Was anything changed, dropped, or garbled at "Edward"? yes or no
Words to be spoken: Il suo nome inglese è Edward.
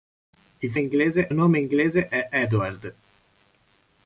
no